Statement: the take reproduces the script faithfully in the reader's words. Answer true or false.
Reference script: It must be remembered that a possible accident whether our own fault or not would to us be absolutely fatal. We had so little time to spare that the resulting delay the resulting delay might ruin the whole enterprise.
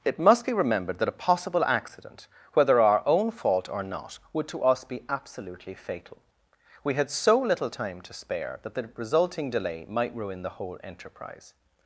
false